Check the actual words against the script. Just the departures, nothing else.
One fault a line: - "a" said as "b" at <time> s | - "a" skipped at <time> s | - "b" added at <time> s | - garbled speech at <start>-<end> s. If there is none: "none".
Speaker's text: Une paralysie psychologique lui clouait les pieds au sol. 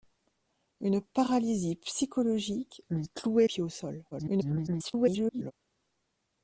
- "les" skipped at 3.5 s
- garbled speech at 4.1-5.5 s